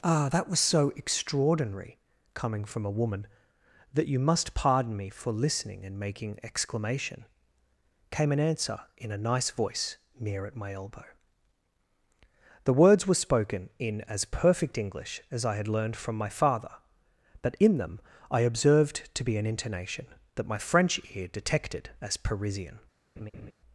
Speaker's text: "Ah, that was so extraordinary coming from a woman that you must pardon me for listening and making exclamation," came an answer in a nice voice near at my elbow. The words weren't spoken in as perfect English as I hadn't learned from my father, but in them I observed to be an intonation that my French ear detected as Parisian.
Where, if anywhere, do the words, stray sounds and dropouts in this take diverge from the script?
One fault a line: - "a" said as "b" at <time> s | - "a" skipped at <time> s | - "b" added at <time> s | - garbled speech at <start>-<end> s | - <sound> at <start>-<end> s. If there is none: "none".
- "weren't" said as "were" at 13.1 s
- "hadn't" said as "had" at 15.6 s
- laugh at 23.2-23.5 s